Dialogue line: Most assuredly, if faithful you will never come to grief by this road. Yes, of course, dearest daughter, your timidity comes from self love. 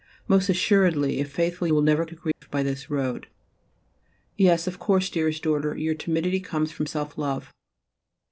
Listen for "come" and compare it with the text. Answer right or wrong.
wrong